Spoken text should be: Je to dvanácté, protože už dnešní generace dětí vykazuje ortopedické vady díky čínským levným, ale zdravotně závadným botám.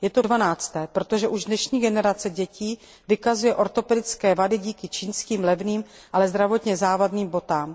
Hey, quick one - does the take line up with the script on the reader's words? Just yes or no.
yes